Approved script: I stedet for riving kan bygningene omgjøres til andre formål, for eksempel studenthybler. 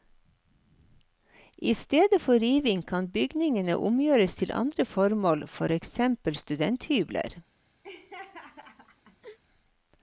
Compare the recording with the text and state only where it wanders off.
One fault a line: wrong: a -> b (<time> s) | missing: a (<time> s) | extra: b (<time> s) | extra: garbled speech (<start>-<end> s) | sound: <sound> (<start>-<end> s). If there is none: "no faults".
sound: laugh (7.8-9.4 s)